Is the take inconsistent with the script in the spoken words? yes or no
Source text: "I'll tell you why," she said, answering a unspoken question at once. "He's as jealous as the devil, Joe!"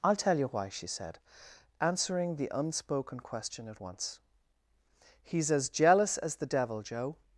yes